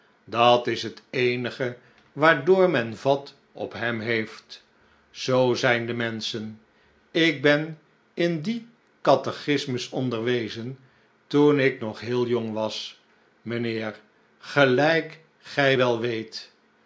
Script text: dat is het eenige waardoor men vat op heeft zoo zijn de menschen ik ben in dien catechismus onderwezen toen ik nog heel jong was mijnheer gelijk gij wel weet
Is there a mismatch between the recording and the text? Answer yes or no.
yes